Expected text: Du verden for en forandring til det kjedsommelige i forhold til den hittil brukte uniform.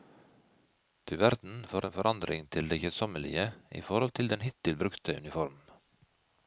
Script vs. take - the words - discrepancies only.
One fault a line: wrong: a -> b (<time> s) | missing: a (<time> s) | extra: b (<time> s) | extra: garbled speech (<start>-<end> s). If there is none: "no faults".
no faults